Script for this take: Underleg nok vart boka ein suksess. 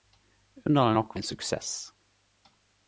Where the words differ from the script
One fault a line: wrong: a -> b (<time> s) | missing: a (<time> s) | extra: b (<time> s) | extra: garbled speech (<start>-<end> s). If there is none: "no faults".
missing: vart boka (1.1 s)